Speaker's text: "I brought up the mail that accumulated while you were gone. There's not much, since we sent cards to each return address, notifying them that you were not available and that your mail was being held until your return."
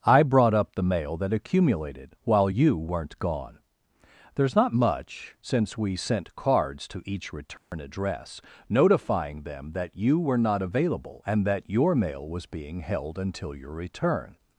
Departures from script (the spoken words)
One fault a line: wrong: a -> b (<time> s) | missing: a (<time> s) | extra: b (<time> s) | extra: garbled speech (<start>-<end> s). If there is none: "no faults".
wrong: were -> weren't (2.8 s)